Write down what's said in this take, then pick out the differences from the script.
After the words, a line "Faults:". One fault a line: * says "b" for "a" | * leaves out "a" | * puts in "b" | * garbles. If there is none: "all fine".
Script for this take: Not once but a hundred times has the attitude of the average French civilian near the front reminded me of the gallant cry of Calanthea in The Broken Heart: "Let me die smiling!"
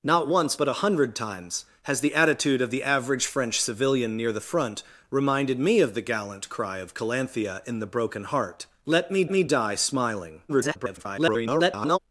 Not once but a hundred times has the attitude of the average French civilian near the front reminded me of the gallant cry of Calanthea in The Broken Heart: "Let me me die smiling!" [garbled]
Faults:
* puts in "me"
* garbles